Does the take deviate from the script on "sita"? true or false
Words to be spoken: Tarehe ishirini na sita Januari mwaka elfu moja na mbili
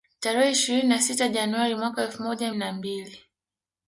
false